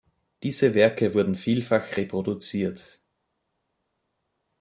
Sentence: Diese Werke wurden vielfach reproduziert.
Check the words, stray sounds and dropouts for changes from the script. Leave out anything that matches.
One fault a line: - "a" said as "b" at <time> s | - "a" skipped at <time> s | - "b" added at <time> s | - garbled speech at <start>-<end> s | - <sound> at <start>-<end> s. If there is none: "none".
none